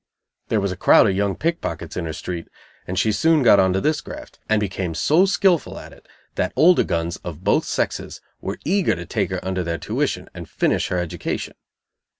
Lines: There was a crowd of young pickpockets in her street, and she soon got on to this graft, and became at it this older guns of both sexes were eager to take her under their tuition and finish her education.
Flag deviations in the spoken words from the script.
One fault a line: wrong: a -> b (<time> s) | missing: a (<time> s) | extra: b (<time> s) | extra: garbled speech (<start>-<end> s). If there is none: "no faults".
extra: so skilful (4.9 s)
wrong: this -> that (6.4 s)